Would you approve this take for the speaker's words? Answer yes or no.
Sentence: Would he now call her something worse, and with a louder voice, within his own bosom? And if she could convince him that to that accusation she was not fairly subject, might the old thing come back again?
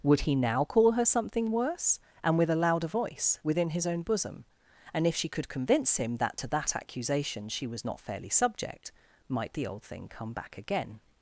yes